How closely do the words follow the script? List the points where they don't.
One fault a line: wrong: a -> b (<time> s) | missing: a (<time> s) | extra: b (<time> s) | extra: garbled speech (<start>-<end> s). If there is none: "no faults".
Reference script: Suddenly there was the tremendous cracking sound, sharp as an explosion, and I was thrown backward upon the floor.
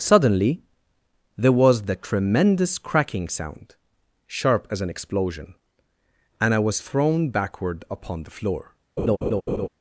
no faults